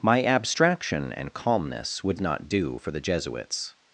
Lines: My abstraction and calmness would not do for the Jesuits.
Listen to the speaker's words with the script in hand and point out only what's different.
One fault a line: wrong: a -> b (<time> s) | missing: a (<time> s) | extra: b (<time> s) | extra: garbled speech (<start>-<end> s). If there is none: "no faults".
no faults